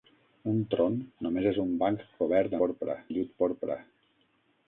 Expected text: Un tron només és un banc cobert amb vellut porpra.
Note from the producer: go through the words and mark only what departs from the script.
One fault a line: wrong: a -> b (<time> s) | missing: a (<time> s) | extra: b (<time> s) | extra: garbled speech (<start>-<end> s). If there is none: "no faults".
wrong: amb -> porpra (2.6 s)